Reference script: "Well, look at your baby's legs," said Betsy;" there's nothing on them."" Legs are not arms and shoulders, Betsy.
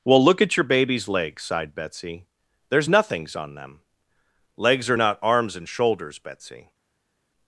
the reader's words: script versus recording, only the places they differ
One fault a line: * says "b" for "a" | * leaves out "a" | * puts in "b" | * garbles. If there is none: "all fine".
* says "sighed" for "said"
* says "nothings" for "nothing"